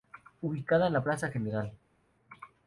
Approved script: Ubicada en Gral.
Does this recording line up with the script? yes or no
no